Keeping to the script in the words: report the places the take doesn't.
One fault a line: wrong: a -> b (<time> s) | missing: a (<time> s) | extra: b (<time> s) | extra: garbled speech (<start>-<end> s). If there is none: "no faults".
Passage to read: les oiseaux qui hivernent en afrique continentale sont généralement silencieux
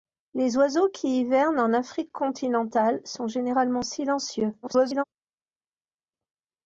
extra: garbled speech (4.6-5.0 s)